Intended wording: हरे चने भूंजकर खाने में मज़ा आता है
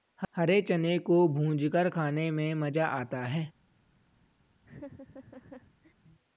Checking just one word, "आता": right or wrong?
right